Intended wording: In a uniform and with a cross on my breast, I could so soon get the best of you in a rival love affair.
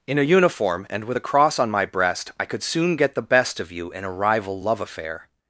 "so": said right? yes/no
no